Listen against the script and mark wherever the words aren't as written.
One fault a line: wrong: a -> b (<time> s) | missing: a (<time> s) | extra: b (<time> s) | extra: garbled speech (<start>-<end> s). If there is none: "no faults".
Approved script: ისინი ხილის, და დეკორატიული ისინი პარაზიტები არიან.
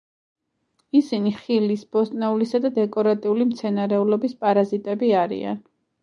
extra: ბოსტნეულისა (2.0 s)
wrong: ისინი -> მცენარეულობის (3.5 s)